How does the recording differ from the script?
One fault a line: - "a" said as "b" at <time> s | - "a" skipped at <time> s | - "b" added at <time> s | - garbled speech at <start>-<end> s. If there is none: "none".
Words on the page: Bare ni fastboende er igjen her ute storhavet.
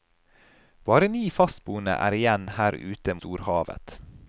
none